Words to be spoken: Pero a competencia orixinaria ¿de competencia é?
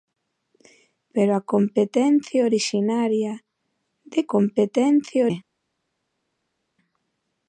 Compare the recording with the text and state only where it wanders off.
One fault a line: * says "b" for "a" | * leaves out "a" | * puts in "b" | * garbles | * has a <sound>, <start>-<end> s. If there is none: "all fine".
all fine